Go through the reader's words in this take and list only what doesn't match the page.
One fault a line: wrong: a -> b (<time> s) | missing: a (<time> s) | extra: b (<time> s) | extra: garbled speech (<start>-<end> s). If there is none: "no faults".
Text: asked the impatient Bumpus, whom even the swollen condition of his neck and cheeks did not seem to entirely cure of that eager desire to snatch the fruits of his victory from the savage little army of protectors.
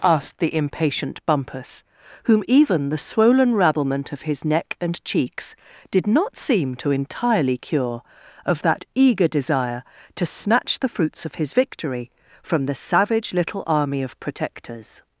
wrong: condition -> rabblement (3.5 s)